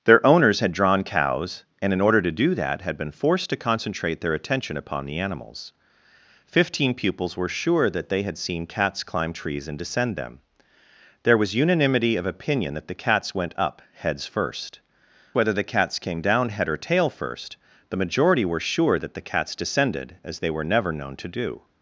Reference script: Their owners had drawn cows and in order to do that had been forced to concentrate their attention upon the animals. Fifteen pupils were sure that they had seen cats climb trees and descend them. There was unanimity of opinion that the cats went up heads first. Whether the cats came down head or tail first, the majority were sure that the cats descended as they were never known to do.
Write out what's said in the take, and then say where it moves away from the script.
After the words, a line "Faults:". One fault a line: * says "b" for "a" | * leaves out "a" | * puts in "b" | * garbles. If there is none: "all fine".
Their owners had drawn cows and in order to do that had been forced to concentrate their attention upon the animals. Fifteen pupils were sure that they had seen cats climb trees and descend them. There was unanimity of opinion that the cats went up heads first. Whether the cats came down head or tail first, the majority were sure that the cats descended as they were never known to do.
Faults:
all fine